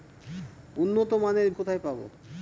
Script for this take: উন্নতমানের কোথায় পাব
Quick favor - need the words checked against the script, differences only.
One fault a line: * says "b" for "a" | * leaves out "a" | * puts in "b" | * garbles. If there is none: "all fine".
all fine